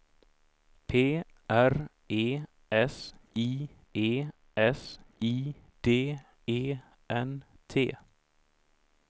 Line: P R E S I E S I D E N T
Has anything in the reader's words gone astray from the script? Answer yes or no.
no